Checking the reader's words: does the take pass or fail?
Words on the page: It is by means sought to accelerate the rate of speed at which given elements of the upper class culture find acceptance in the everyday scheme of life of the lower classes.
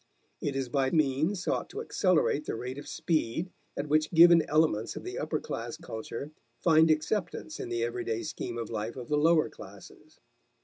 pass